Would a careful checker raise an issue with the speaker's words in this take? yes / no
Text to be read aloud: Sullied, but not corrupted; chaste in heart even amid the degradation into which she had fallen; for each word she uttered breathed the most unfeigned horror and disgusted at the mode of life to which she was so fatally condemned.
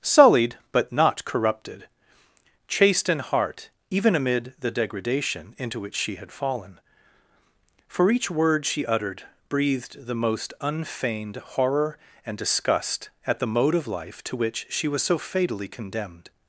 yes